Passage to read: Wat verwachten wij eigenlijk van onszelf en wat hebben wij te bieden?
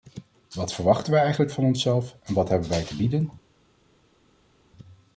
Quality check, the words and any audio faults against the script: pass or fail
pass